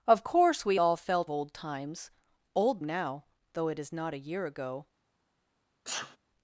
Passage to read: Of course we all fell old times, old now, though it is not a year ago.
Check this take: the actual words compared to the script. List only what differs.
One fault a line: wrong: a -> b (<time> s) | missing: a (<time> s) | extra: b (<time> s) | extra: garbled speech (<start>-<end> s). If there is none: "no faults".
no faults